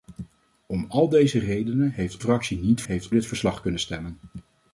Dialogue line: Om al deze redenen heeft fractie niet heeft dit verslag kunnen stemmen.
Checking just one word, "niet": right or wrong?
right